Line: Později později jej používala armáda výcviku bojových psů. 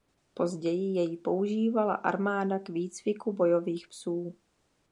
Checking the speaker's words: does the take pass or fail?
fail